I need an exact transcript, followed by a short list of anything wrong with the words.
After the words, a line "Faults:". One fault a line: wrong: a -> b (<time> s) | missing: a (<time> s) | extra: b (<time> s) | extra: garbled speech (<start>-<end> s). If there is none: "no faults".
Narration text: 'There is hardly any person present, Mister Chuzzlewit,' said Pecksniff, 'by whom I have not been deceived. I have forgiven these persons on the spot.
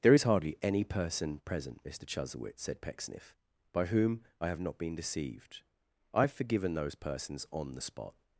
'There is hardly any person present, Mister Chuzzlewit,' said Pecksniff, 'by whom I have not been deceived. I have forgiven those persons on the spot.
Faults:
wrong: these -> those (6.7 s)